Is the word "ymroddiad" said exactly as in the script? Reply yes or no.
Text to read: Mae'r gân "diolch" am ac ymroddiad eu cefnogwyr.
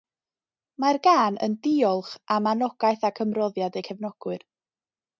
yes